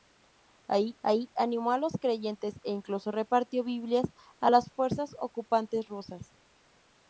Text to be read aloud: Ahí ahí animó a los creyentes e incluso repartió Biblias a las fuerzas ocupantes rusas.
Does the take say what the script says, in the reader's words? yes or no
yes